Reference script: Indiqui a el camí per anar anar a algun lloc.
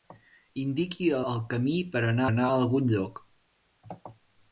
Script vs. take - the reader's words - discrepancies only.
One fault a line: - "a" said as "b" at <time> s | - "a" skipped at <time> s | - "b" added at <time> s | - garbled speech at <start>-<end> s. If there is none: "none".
none